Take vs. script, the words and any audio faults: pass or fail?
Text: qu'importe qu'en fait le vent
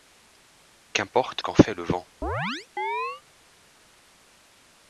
fail